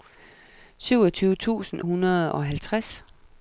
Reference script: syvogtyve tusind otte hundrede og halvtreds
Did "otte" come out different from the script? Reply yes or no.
yes